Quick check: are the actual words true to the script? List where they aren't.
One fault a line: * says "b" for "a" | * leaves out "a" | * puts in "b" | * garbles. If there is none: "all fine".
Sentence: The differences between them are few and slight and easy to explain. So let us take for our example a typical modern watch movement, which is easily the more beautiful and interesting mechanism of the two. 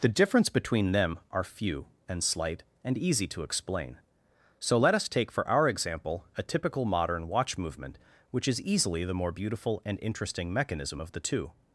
* says "difference" for "differences"